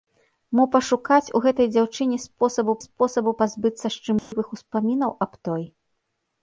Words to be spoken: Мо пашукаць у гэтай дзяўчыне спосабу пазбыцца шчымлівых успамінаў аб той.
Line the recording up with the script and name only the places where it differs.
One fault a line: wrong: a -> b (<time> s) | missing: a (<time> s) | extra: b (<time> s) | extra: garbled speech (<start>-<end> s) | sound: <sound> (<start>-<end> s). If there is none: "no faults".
extra: спосабу (2.8 s)
sound: dropout (4.2-4.3 s)